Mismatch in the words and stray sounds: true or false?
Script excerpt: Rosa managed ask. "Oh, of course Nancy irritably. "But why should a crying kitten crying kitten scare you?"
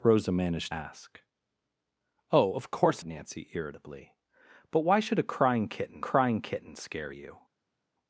false